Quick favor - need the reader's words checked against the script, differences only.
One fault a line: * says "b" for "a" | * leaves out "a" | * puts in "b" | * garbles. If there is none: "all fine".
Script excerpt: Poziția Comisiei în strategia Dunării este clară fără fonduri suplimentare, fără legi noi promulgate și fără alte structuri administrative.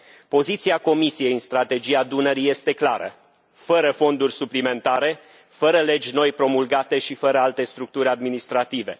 all fine